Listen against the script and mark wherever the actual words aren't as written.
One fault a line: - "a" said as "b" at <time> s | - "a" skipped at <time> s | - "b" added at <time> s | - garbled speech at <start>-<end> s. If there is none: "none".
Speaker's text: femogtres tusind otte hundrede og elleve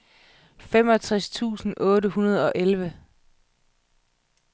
none